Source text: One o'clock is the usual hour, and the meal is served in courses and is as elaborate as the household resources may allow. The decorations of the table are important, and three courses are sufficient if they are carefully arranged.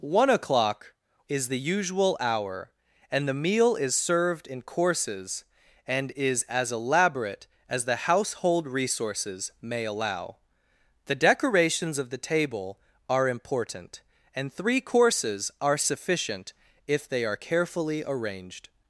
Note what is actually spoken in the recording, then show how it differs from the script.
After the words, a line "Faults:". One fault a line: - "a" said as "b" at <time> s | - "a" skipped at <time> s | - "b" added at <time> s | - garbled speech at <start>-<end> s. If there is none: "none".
One o'clock is the usual hour, and the meal is served in courses and is as elaborate as the household resources may allow. The decorations of the table are important, and three courses are sufficient if they are carefully arranged.
Faults:
none